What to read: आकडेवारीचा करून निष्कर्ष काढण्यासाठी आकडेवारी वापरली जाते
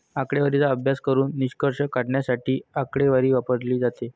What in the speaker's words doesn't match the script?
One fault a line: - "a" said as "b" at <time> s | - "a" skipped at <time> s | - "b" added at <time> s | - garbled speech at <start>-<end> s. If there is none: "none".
- "अभ्यास" added at 0.7 s